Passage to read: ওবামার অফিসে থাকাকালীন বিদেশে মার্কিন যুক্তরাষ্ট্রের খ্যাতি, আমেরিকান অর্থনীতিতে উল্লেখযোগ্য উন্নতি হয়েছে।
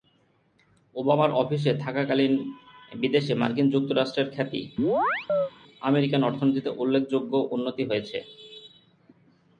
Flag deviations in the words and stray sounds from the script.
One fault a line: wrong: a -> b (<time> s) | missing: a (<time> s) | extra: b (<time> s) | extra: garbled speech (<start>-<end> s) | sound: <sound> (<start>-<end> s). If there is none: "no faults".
sound: chirp (4.8-5.5 s)